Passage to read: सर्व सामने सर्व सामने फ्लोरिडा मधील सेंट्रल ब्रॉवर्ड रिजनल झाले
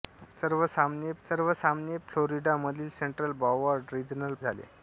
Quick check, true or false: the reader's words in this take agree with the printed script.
true